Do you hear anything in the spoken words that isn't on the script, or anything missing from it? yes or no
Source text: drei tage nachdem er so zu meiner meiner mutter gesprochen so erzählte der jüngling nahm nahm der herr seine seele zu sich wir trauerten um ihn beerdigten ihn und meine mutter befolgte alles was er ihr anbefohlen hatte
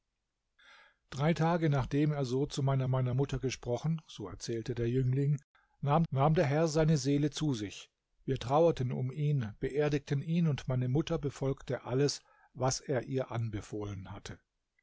no